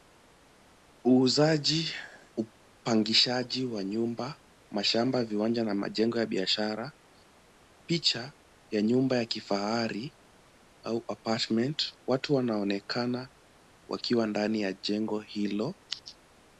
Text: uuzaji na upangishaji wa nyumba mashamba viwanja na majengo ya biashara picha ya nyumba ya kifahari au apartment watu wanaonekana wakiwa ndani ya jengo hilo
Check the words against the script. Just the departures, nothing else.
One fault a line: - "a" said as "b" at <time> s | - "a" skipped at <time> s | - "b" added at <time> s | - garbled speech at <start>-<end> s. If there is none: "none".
- "na" skipped at 1.9 s